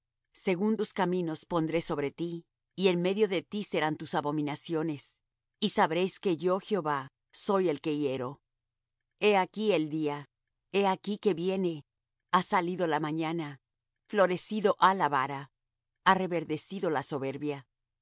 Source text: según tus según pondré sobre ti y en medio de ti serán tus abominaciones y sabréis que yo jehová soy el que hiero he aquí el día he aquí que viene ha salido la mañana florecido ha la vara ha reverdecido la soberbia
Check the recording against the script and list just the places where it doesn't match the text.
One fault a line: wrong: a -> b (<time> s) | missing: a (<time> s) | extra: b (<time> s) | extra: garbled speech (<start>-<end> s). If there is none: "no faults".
wrong: según -> caminos (0.9 s)